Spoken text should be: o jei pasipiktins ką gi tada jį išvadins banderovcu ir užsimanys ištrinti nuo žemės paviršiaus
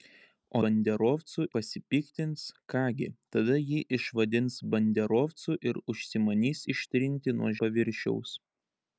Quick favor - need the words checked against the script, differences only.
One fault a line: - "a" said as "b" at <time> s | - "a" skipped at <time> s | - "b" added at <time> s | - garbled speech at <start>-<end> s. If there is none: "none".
- "jei" said as "banderovcu" at 0.6 s
- "žemės" skipped at 7.5 s